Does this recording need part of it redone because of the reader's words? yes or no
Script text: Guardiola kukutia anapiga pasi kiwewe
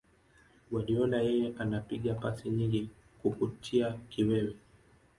yes